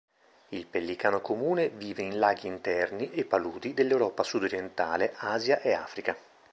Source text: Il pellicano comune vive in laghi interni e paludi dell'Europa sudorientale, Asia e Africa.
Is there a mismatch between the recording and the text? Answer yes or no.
no